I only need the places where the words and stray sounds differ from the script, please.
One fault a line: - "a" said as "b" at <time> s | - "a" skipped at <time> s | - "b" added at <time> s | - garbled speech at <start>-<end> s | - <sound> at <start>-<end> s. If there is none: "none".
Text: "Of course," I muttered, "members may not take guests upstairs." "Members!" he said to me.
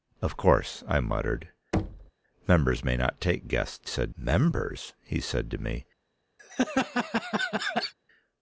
- thud at 1.7-2.1 s
- "upstairs" said as "said" at 3.8 s
- laugh at 6.4-7.9 s